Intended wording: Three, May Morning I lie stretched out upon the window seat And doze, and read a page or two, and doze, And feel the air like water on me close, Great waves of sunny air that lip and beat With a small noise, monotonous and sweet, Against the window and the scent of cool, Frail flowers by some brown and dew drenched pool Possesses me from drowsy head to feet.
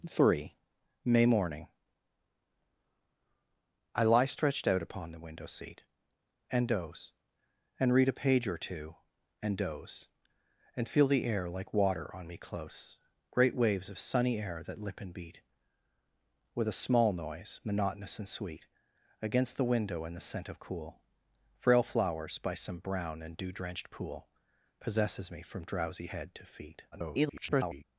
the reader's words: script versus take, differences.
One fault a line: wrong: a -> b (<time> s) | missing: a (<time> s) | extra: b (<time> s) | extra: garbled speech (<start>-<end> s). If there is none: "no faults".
extra: garbled speech (26.9-27.8 s)